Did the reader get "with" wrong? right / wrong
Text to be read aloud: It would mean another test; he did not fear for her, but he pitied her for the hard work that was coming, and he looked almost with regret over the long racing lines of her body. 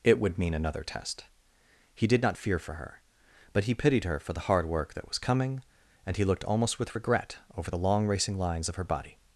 right